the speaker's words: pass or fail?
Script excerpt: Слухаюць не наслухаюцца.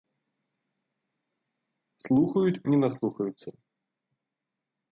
pass